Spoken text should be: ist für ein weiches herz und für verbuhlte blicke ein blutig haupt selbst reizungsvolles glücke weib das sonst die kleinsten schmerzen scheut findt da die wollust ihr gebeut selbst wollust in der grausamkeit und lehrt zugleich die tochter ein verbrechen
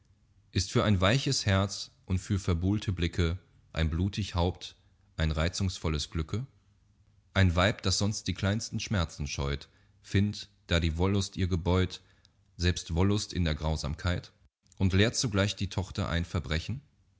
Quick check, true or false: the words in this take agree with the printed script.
false